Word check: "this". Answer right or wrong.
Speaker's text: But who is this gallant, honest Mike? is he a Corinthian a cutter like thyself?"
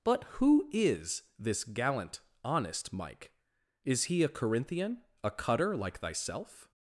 right